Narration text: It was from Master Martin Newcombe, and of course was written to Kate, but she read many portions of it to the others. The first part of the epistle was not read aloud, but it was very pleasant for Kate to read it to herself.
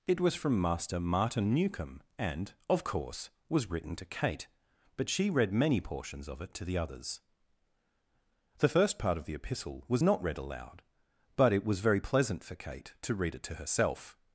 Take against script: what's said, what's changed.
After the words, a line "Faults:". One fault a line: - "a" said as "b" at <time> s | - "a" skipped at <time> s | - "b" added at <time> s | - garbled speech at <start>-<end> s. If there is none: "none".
It was from Master Martin Newcombe, and of course was written to Kate, but she read many portions of it to the others. The first part of the epistle was not read aloud, but it was very pleasant for Kate to read it to herself.
Faults:
none